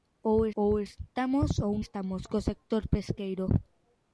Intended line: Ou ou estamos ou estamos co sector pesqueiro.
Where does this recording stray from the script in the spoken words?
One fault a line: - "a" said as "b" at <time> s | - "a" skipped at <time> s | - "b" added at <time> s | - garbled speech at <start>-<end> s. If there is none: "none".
none